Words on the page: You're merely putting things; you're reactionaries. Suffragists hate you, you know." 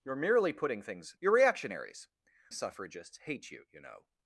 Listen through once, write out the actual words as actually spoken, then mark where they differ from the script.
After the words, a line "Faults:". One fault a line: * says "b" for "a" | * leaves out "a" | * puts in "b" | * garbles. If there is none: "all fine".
You're merely putting things; you're reactionaries. Suffragists hate you, you know."
Faults:
all fine